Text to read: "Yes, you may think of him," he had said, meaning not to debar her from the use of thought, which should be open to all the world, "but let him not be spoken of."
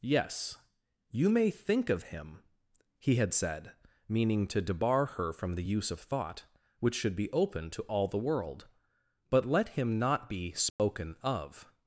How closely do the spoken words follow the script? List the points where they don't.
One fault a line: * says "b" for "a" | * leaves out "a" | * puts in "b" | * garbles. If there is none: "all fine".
* leaves out "not"